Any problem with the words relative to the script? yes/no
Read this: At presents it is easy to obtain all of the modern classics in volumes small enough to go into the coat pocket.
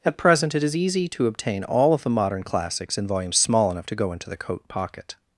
yes